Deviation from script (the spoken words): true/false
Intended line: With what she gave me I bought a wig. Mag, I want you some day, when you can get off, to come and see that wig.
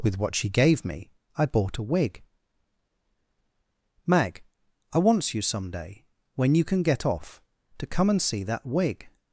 true